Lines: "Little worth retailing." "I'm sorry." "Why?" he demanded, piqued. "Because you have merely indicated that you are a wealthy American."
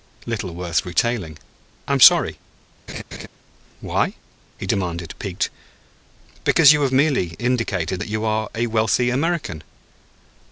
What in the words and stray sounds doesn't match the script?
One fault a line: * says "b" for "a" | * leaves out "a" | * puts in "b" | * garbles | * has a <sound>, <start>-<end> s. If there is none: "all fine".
* has a laugh, 2.9-3.3 s